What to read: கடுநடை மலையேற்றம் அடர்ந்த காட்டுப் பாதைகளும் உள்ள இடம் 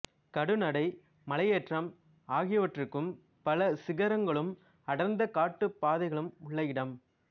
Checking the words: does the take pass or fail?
fail